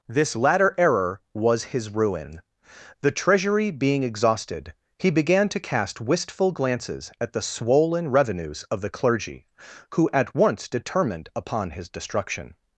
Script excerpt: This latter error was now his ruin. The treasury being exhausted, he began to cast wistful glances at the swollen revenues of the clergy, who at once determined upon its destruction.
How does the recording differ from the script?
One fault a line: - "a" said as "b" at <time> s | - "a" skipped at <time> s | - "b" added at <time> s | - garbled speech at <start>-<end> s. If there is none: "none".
- "now" skipped at 1.7 s
- "its" said as "his" at 11.7 s